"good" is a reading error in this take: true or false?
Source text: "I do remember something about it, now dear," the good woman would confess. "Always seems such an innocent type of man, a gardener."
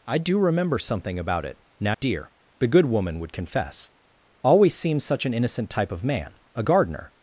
false